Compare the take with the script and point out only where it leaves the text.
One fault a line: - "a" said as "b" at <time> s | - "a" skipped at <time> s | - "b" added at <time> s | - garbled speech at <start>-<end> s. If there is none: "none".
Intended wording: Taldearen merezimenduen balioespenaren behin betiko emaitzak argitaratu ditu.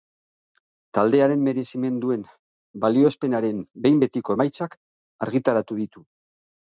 none